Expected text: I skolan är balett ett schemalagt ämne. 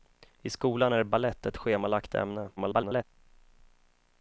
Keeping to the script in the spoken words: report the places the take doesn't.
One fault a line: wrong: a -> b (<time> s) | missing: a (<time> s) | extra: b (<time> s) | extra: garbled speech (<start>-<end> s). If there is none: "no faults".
extra: garbled speech (2.6-3.0 s)